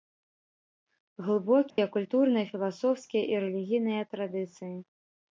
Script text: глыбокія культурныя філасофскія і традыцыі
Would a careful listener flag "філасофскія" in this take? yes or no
no